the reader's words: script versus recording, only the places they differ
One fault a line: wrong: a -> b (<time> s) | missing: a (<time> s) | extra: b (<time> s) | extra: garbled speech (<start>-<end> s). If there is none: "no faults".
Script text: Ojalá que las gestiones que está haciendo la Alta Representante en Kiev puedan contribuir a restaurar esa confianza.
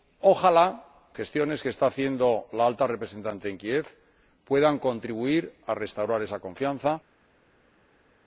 missing: que las (0.8 s)